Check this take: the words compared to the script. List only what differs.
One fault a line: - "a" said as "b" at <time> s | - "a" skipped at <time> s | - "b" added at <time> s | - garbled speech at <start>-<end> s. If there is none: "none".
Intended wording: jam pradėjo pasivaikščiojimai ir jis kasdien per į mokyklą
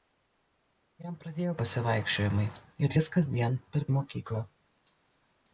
none